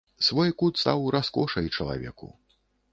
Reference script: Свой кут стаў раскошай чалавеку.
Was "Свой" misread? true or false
false